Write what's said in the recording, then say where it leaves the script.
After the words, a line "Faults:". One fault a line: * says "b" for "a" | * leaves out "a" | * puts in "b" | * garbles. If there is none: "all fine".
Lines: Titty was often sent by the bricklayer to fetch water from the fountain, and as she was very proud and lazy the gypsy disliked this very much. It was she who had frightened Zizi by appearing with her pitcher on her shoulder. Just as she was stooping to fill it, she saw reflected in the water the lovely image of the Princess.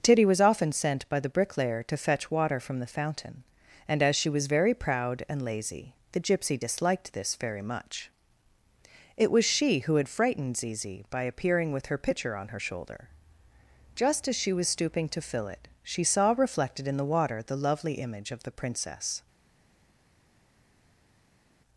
Titty was often sent by the bricklayer to fetch water from the fountain, and as she was very proud and lazy the gypsy disliked this very much. It was she who had frightened Zizi by appearing with her pitcher on her shoulder. Just as she was stooping to fill it, she saw reflected in the water the lovely image of the Princess.
Faults:
all fine